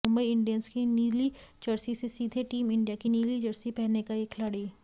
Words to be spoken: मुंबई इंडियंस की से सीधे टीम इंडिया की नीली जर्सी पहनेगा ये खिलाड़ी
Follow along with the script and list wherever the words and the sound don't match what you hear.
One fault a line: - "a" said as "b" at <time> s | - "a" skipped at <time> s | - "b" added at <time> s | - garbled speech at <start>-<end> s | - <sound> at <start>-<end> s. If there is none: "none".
- "नीली जर्सी" added at 0.8 s